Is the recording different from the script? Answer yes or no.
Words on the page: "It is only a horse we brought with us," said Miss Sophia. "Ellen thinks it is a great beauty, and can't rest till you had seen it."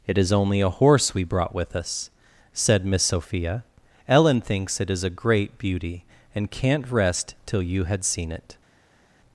no